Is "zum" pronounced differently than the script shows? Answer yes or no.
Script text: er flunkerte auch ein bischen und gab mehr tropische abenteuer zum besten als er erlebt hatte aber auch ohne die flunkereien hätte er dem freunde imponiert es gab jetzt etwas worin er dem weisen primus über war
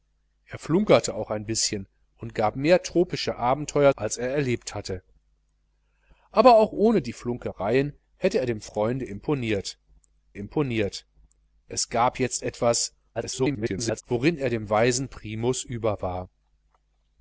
yes